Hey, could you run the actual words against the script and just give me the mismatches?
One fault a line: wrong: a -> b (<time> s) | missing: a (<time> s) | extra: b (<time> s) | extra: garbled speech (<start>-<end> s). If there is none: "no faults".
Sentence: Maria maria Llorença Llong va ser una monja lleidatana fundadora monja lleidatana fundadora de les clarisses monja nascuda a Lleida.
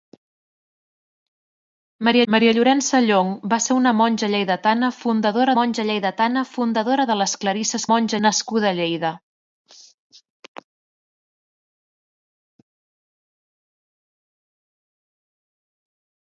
no faults